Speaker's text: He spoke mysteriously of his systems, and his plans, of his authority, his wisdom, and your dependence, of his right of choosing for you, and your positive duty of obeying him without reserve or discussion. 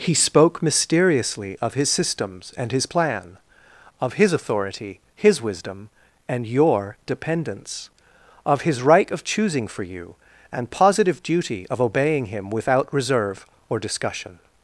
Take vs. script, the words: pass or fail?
fail